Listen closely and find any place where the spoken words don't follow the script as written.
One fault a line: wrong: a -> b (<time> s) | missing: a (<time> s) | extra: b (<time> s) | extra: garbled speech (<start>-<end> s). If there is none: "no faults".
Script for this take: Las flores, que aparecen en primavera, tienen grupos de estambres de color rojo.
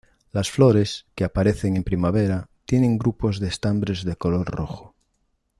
no faults